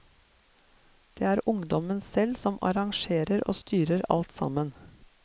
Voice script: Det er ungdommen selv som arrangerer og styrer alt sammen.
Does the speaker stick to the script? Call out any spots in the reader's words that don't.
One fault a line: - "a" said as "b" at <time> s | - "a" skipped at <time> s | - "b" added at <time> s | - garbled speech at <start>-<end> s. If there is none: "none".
none